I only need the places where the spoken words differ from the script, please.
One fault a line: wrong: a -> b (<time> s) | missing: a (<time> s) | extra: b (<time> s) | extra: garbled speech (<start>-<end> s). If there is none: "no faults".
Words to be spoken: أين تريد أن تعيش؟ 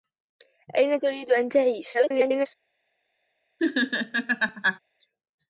extra: garbled speech (1.9-2.5 s)